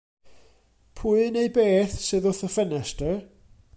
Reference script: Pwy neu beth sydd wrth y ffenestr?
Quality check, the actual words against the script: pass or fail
pass